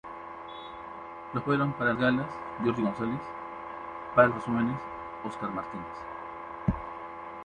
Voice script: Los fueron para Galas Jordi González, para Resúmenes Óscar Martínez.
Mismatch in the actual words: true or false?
false